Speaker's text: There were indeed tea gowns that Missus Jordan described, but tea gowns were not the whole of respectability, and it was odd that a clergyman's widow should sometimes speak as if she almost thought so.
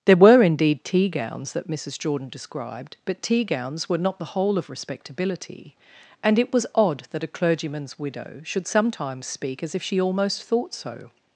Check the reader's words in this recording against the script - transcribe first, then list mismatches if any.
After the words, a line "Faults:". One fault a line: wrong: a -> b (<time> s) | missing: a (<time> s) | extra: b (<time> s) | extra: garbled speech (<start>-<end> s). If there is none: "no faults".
There were indeed tea gowns that Missus Jordan described, but tea gowns were not the whole of respectability, and it was odd that a clergyman's widow should sometimes speak as if she almost thought so.
Faults:
no faults